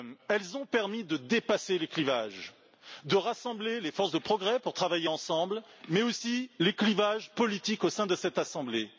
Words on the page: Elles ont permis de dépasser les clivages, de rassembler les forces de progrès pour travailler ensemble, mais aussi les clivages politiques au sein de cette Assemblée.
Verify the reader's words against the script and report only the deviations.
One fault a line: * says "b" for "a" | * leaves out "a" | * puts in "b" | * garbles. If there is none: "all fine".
all fine